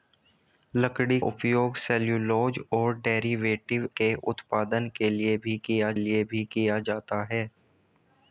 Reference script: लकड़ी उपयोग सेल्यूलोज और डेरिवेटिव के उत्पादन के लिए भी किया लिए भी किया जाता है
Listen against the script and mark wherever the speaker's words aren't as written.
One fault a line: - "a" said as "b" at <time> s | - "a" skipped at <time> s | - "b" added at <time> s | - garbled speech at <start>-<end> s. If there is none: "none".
none